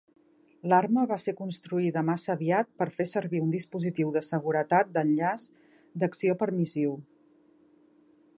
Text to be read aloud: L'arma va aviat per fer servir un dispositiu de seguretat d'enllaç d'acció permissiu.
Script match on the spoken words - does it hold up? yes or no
no